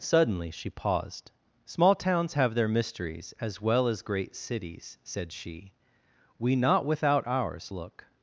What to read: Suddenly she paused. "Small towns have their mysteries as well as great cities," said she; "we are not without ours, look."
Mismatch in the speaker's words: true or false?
true